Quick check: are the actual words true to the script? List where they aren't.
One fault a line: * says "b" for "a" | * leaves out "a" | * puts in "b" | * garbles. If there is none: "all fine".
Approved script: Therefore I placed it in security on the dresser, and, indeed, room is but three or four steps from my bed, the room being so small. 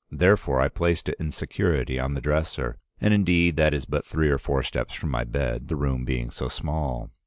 * says "that" for "room"